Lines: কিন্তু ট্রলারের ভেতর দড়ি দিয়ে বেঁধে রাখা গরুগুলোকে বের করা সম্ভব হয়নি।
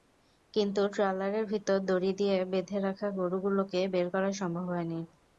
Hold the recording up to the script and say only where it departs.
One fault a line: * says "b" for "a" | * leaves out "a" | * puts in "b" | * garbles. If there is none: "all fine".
all fine